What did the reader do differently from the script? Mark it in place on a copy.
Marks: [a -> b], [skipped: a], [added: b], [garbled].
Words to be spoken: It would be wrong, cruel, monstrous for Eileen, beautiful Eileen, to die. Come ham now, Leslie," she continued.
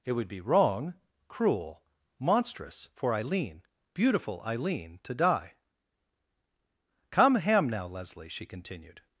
It would be wrong, cruel, monstrous for Eileen, beautiful Eileen, to die. Come ham now, Leslie," she continued.